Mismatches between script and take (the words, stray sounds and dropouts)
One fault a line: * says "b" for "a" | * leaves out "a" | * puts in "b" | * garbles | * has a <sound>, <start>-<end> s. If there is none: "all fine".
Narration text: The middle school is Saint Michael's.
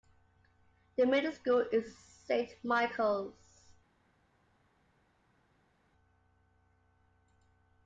all fine